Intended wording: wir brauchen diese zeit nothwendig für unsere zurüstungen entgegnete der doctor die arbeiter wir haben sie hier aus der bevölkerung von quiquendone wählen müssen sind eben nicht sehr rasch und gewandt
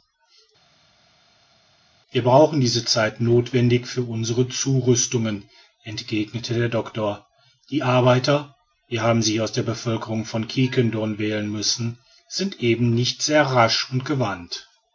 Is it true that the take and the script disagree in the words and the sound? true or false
false